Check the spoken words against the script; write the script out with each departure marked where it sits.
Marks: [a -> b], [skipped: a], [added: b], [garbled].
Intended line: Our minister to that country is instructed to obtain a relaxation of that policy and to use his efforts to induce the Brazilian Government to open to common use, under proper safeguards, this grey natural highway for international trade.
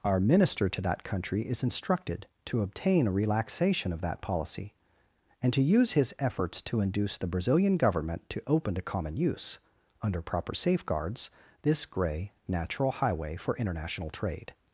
Our minister to that country is instructed to obtain a relaxation of that policy and to use his efforts to induce the Brazilian Government to open to common use, under proper safeguards, this grey natural highway for international trade.